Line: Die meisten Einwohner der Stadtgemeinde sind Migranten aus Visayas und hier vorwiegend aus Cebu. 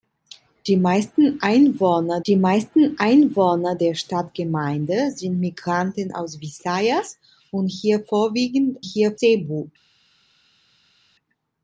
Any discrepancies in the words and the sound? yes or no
yes